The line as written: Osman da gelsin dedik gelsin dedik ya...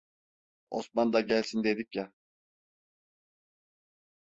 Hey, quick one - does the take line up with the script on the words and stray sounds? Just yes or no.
no